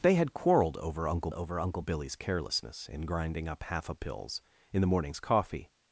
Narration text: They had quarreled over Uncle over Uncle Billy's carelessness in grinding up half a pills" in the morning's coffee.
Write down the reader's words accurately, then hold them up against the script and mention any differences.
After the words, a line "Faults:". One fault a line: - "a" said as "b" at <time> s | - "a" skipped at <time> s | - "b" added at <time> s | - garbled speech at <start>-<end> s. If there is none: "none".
They had quarreled over Uncle over Uncle Billy's carelessness in grinding up half a pills" in the morning's coffee.
Faults:
none